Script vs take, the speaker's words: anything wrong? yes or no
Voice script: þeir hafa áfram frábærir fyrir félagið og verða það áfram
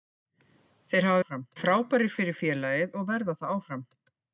no